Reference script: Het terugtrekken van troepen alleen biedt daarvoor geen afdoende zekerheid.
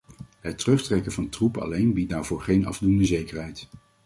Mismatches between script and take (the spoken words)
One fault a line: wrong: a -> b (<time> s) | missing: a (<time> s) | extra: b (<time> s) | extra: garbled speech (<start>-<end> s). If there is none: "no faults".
no faults